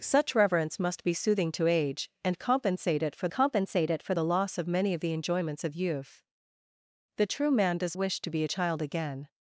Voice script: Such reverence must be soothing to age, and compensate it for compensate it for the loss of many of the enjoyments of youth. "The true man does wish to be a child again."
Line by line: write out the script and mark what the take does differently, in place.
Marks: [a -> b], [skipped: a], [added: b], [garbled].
Such reverence must be soothing to age, and compensate it for compensate it for the loss of many of the enjoyments of youth. "The true man does wish to be a child again."